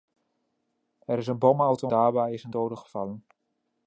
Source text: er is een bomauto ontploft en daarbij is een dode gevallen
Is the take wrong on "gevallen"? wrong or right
right